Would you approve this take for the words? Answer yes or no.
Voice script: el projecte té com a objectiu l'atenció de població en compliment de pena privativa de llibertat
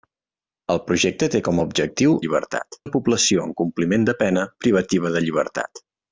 no